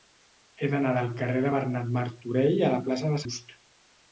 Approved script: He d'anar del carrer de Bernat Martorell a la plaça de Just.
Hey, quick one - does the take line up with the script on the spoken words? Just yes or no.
yes